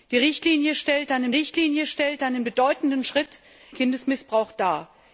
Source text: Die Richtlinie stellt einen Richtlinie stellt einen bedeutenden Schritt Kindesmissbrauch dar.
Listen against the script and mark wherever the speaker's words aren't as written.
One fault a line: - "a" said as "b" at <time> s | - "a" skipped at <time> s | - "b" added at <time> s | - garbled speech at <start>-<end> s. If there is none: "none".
none